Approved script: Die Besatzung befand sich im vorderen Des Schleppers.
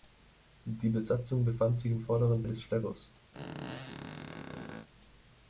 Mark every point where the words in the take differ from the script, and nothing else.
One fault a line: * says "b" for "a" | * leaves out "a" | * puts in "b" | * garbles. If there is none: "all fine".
all fine